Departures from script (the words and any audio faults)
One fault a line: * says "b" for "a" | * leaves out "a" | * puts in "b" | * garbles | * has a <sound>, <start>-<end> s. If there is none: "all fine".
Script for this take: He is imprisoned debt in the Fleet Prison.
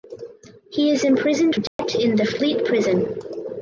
* has a dropout, 1.7-1.8 s